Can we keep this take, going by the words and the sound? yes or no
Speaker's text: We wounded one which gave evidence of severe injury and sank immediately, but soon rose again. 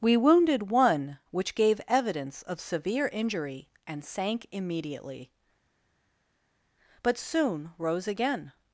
yes